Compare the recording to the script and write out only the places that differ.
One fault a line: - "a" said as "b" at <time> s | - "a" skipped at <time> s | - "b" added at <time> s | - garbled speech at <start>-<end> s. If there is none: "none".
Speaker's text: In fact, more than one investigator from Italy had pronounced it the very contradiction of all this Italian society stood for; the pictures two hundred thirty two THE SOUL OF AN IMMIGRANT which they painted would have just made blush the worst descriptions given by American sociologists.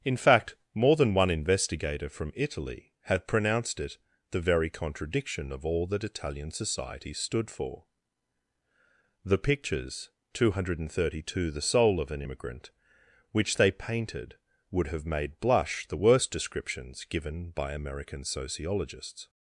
- "this" said as "that" at 5.9 s
- "just" skipped at 15.0 s